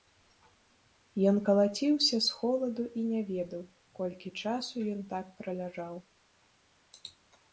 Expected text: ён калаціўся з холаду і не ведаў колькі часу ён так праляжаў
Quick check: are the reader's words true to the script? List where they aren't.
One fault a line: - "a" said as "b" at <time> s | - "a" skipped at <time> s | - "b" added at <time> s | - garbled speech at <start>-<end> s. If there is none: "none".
none